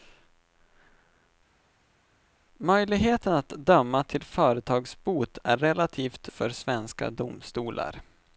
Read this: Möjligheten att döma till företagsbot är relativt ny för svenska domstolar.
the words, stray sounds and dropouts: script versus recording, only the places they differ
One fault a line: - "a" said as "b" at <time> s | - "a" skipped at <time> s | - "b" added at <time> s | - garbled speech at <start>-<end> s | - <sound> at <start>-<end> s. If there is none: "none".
- "ny" skipped at 6.3 s